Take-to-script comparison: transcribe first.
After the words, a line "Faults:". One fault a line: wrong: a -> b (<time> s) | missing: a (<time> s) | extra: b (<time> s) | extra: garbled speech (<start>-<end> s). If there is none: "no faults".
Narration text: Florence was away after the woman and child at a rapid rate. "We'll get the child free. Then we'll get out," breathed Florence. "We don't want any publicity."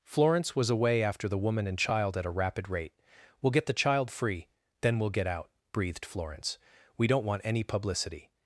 Florence was away after the woman and child at a rapid rate. "We'll get the child free. Then we'll get out," breathed Florence. "We don't want any publicity."
Faults:
no faults